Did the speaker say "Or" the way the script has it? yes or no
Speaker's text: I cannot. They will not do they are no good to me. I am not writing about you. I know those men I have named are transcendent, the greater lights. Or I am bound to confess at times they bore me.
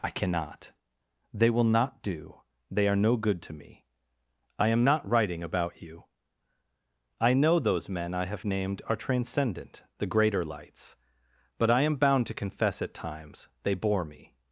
no